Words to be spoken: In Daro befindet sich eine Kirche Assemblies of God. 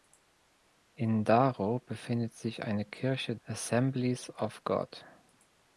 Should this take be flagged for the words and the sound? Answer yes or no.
no